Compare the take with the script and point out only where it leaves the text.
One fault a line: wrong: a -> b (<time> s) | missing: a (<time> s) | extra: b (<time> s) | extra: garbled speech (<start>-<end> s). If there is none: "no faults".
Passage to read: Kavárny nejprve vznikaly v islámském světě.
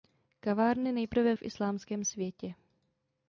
missing: vznikaly (1.4 s)